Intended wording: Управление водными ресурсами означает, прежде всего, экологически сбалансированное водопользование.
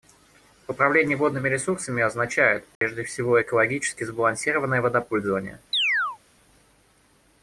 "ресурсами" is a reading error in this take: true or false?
false